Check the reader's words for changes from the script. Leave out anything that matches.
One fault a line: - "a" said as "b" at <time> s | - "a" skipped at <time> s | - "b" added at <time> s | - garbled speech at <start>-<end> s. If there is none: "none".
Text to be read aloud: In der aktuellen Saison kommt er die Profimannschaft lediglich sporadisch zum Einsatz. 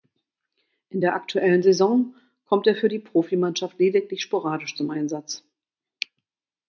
- "für" added at 2.8 s